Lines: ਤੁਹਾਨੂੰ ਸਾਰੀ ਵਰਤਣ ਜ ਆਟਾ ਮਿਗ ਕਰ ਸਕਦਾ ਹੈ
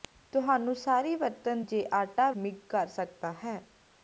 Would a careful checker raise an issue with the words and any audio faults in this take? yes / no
no